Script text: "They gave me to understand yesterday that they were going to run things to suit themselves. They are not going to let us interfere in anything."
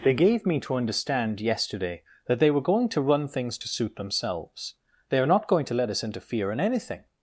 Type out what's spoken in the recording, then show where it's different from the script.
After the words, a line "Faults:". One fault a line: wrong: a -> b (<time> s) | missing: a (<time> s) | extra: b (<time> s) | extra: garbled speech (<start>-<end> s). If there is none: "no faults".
"They gave me to understand yesterday that they were going to run things to suit themselves. They are not going to let us interfere in anything."
Faults:
no faults